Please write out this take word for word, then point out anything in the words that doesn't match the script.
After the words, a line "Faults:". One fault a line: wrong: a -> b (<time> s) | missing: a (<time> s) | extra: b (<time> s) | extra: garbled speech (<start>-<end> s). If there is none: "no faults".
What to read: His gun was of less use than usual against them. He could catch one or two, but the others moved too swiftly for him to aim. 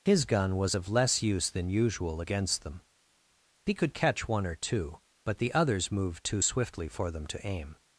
His gun was of less use than usual against them. He could catch one or two, but the others moved too swiftly for them to aim.
Faults:
wrong: him -> them (7.1 s)